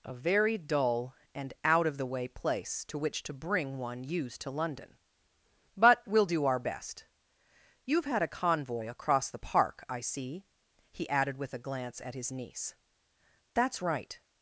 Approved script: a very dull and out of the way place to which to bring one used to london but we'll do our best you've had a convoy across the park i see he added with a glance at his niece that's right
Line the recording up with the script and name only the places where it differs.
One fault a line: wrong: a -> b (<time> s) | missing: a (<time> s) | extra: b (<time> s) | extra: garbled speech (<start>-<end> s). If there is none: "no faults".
no faults